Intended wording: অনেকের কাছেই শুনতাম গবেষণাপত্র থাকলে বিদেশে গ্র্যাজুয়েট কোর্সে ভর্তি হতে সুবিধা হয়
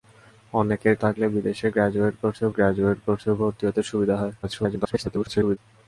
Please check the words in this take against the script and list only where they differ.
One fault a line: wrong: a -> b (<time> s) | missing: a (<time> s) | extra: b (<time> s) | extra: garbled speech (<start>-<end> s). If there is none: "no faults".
wrong: কাছেই শুনতাম গবেষণাপত্র থাকলে বিদেশে -> থাকলে বিদেশে গ্র্যাজুয়েট কোর্সে (1.0 s)
extra: garbled speech (4.4-5.6 s)